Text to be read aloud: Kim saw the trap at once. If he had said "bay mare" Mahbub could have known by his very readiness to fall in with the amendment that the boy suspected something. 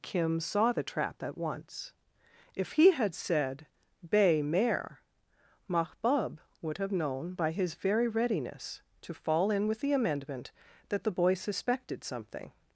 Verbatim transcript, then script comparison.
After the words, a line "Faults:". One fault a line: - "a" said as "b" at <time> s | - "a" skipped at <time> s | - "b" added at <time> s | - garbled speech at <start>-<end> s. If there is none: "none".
Kim saw the trap at once. If he had said "bay mare" Mahbub would have known by his very readiness to fall in with the amendment that the boy suspected something.
Faults:
- "could" said as "would" at 6.6 s